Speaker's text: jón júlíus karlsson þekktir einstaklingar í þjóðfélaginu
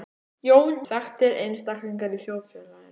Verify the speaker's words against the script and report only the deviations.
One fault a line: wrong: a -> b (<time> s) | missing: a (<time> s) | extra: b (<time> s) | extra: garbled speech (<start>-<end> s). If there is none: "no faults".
missing: júlíus karlsson (0.7 s)